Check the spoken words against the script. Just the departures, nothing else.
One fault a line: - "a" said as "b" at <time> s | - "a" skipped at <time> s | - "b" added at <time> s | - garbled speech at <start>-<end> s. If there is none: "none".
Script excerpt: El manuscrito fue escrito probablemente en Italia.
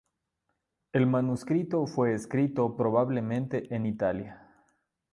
none